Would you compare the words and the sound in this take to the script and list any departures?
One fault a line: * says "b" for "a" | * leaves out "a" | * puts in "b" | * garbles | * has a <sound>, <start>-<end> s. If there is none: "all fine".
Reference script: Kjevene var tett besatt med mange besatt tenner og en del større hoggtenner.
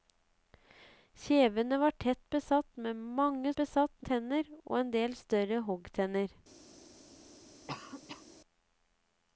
* has a cough, 7.7-8.2 s